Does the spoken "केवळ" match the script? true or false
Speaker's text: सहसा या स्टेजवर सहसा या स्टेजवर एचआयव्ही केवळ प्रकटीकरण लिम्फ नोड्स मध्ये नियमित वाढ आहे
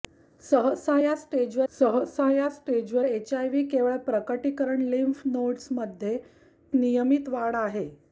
true